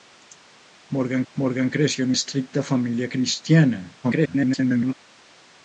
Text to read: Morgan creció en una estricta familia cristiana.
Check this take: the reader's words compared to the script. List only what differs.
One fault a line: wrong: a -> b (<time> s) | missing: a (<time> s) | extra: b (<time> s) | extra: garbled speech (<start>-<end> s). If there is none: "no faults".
extra: morgan (1.3 s)
missing: una (2.1 s)
extra: garbled speech (4.0-4.9 s)